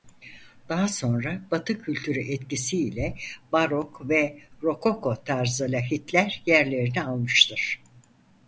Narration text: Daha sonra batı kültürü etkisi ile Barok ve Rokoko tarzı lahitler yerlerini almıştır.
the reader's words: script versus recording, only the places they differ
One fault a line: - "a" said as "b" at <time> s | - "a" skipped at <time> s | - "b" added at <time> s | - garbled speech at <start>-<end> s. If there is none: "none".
none